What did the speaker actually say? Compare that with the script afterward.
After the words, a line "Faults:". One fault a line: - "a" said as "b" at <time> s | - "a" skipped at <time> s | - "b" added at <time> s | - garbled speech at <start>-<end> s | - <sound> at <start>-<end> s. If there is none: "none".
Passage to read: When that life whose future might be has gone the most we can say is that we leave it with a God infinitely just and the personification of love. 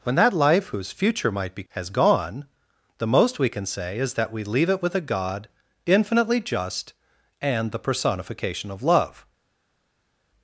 When that life whose future might be has gone the most we can say is that we leave it with a God infinitely just and the personification of love.
Faults:
none